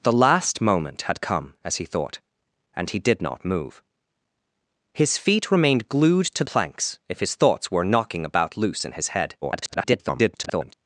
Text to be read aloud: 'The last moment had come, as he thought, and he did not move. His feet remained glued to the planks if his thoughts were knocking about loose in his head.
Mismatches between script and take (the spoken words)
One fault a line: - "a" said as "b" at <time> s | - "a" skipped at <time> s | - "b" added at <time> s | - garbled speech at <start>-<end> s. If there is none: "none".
- "the" skipped at 6.4 s
- garbled speech at 9.4-10.7 s